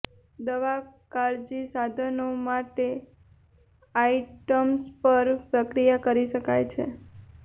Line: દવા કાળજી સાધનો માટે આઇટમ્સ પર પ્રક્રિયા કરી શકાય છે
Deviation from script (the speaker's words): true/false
false